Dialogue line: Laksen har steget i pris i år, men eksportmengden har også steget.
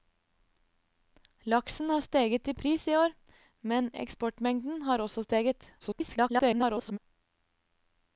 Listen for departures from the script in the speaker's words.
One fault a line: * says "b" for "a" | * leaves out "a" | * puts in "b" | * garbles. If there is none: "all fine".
* garbles